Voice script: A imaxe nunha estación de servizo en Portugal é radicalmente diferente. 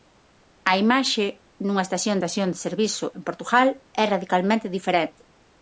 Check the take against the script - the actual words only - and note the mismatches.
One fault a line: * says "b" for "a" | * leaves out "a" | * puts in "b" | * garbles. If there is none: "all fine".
* puts in "estación"